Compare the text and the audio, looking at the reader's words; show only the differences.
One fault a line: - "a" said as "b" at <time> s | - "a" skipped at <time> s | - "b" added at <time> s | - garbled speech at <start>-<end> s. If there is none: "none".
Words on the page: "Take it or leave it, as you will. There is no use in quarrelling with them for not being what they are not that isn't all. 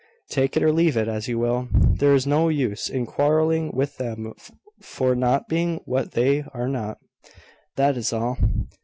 - "isn't" said as "is" at 8.0 s